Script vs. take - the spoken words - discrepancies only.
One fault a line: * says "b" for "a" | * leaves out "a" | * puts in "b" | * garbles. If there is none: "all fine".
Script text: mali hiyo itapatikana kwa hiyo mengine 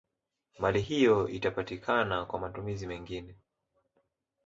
* says "matumizi" for "hiyo"